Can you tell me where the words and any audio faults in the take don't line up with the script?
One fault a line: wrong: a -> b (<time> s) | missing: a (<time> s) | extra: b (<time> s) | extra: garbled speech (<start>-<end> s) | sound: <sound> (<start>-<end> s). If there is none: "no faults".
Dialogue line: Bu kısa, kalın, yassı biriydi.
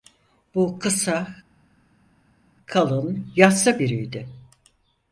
no faults